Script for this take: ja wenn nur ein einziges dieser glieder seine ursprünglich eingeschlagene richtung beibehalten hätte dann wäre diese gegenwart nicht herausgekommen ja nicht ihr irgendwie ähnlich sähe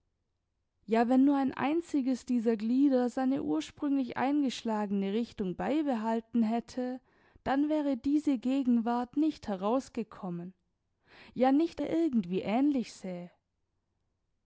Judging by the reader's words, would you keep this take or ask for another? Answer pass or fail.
pass